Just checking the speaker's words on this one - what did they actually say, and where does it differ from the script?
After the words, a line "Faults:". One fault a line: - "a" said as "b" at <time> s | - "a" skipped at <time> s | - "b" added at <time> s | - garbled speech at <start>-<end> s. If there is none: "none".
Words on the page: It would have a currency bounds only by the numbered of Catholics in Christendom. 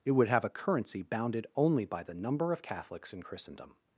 It would have a currency bounded only by the number of Catholics in Christendom.
Faults:
- "bounds" said as "bounded" at 1.0 s
- "numbered" said as "number" at 2.1 s